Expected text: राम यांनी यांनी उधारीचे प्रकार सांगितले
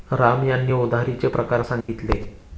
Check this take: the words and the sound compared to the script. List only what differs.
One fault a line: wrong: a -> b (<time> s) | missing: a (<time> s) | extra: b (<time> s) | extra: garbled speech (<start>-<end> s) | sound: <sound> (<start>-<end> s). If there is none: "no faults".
missing: यांनी (0.7 s)
sound: dropout (1.8-1.9 s)